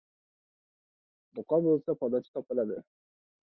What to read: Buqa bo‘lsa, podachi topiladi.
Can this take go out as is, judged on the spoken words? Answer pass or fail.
pass